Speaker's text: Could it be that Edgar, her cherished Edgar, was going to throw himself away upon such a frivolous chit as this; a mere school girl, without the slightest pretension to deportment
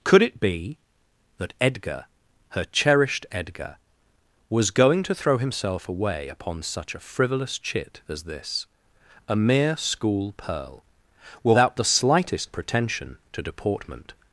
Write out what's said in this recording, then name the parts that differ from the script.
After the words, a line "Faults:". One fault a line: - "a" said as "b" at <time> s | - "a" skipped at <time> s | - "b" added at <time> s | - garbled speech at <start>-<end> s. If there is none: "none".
Could it be that Edgar, her cherished Edgar, was going to throw himself away upon such a frivolous chit as this; a mere school pearl, without the slightest pretension to deportment
Faults:
- "girl" said as "pearl" at 10.3 s